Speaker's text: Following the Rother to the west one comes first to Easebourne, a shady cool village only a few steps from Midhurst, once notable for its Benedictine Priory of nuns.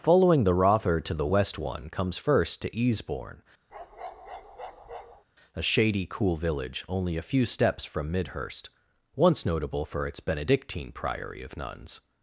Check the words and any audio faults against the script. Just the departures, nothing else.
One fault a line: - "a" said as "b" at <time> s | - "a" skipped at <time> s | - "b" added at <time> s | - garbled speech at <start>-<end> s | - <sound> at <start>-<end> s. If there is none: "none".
- bark at 3.7-5.2 s